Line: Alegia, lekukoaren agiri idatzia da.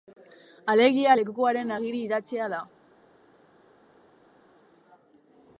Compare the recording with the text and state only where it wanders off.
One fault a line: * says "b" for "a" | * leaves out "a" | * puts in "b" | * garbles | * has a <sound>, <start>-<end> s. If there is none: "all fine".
all fine